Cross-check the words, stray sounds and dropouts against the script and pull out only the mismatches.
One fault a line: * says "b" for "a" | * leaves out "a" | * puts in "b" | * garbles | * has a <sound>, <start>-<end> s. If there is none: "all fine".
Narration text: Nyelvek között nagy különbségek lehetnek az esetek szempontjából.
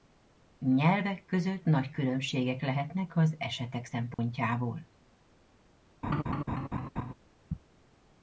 * has a dropout, 4.1-4.2 s
* has a laugh, 6.0-7.1 s